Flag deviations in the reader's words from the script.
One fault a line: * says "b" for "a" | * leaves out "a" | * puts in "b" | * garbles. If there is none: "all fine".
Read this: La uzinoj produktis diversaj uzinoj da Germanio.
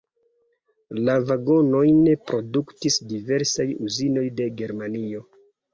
* says "vagonojn" for "uzinoj"
* says "de" for "da"